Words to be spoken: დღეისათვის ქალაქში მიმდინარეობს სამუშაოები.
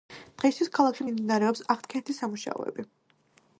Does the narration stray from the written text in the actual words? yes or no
yes